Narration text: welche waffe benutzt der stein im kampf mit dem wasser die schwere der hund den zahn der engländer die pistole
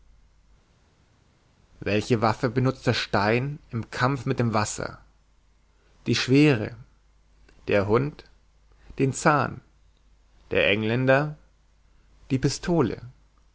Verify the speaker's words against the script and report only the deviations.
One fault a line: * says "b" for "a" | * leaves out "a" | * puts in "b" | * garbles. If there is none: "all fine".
all fine